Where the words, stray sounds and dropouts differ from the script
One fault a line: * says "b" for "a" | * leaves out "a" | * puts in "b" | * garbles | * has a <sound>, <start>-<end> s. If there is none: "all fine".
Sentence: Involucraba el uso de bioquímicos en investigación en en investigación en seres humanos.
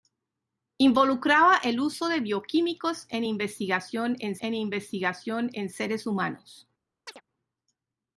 * has a chirp, 7.1-7.2 s